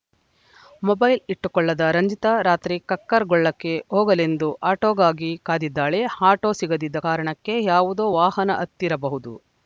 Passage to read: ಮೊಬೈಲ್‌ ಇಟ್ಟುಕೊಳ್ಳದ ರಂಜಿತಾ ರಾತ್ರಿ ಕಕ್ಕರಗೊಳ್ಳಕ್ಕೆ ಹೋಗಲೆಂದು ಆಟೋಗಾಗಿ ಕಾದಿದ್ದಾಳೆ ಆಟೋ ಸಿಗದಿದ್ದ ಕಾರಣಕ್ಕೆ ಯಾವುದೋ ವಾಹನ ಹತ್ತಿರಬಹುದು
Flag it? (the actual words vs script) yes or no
no